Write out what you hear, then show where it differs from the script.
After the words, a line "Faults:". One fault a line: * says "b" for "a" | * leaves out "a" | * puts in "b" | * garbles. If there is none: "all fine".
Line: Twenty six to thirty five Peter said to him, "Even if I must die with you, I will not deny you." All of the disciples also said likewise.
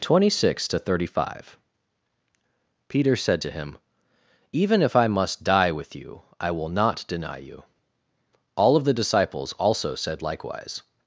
Twenty six to thirty five Peter said to him, "Even if I must die with you, I will not deny you." All of the disciples also said likewise.
Faults:
all fine